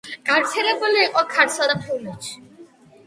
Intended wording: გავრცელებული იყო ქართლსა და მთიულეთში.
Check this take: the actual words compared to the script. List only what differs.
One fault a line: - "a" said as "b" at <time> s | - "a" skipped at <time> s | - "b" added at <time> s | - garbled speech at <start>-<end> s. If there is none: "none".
none